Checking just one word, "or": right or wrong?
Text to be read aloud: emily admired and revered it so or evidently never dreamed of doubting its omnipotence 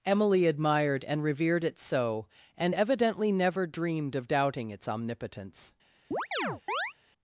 wrong